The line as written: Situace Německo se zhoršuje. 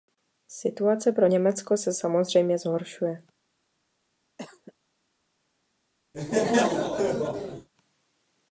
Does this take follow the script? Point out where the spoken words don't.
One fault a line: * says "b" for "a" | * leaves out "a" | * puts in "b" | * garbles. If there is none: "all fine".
* puts in "pro"
* puts in "samozřejmě"